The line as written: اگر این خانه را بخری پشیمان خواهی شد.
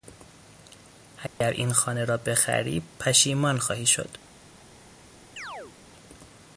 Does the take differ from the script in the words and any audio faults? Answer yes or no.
yes